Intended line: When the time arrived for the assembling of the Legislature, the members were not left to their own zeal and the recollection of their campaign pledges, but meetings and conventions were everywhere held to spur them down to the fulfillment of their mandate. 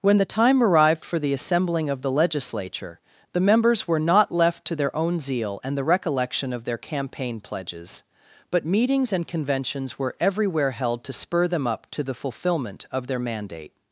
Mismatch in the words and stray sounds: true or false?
true